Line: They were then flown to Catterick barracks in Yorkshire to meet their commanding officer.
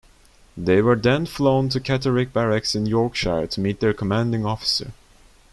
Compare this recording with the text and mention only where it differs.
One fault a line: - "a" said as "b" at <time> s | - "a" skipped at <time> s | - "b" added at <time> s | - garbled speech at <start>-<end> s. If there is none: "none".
none